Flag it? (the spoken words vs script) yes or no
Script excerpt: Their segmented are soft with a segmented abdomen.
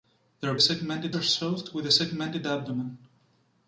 no